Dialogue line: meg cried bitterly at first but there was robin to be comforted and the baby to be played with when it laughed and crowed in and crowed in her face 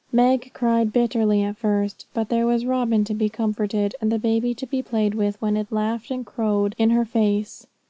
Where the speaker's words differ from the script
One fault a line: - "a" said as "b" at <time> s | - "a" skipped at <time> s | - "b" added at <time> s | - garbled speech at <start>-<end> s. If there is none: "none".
- "and crowed in" skipped at 6.9 s